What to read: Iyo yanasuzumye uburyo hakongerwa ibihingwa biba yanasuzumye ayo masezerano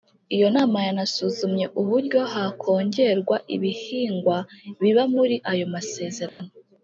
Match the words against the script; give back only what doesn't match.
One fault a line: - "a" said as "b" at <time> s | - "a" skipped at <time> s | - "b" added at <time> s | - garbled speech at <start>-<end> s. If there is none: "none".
- "nama" added at 0.5 s
- "yanasuzumye" said as "muri" at 5.1 s